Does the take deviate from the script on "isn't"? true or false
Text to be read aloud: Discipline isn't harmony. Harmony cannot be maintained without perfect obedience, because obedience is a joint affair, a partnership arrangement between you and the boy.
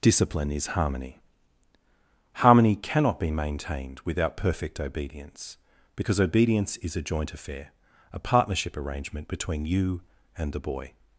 true